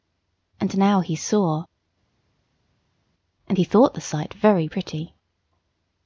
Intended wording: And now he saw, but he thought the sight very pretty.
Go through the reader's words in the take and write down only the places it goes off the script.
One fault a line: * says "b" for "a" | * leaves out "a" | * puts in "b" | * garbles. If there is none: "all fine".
* says "and" for "but"